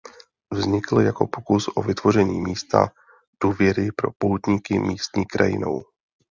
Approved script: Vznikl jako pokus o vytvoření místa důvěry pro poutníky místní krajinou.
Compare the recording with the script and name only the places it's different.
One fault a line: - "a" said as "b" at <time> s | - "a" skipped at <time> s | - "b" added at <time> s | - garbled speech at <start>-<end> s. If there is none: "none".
none